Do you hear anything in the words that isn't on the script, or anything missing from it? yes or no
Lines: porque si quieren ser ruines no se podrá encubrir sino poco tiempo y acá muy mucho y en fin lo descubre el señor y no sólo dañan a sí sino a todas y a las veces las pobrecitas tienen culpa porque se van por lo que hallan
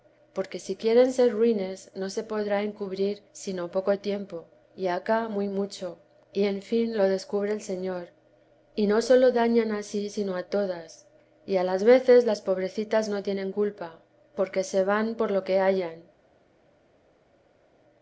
yes